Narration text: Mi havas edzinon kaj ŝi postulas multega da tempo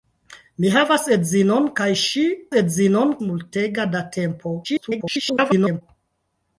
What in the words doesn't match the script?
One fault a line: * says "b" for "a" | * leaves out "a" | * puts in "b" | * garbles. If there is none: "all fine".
* says "edzinon" for "postulas"
* garbles